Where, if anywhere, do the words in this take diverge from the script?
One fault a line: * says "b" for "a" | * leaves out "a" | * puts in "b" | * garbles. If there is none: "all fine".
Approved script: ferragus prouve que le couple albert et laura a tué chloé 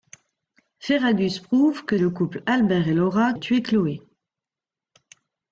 all fine